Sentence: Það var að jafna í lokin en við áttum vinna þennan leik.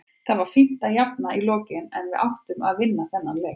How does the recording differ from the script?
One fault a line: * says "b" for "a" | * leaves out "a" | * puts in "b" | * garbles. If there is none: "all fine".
* puts in "fínt"
* puts in "að"